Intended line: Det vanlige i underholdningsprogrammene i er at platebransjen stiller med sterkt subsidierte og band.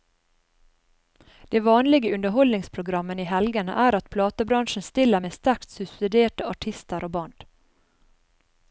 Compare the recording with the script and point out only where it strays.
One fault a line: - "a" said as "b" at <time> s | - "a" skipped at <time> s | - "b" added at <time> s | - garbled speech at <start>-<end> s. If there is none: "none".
- "helgene" added at 3.3 s
- "artister" added at 6.5 s